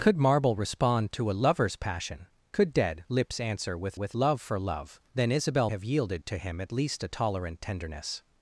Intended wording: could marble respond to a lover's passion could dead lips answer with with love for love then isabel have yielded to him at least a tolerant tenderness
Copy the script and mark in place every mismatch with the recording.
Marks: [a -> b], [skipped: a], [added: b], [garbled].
could marble respond to a lover's passion could dead lips answer with with love for love then isabel have yielded to him at least a tolerant tenderness